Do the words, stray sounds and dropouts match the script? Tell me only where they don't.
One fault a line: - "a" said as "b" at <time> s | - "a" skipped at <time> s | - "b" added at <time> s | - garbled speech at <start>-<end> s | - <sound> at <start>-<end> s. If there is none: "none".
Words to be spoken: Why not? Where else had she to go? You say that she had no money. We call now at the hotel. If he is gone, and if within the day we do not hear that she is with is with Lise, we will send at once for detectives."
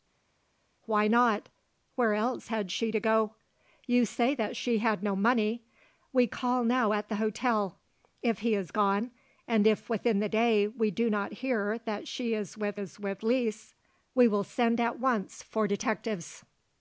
none